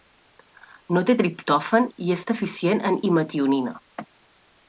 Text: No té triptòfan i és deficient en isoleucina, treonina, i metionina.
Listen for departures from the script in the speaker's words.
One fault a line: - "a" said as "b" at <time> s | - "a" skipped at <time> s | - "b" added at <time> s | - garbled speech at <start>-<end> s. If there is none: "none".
- "isoleucina treonina" skipped at 3.0 s